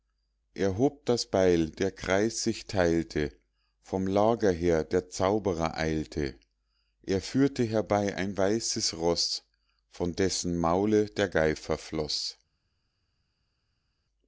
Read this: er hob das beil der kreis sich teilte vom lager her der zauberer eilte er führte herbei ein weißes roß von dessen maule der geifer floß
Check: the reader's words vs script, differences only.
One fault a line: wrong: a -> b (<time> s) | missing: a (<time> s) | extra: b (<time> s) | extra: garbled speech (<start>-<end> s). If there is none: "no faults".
no faults